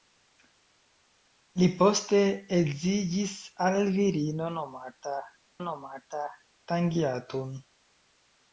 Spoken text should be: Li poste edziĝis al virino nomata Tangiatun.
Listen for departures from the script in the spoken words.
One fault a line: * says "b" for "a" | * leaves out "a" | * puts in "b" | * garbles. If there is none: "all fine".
* puts in "nomata"